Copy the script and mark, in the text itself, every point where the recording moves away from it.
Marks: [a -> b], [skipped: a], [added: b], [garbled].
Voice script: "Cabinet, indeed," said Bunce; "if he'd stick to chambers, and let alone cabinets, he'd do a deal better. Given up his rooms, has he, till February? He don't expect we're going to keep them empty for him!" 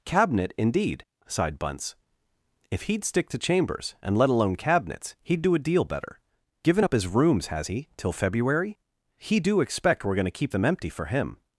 "Cabinet, indeed," [said -> sighed] Bunce; "if he'd stick to chambers, and let alone cabinets, he'd do a deal better. Given up his rooms, has he, till February? He [don't -> do] expect we're going to keep them empty for him!"